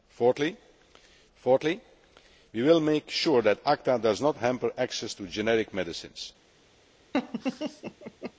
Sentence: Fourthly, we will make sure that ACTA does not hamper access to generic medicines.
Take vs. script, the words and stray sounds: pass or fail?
fail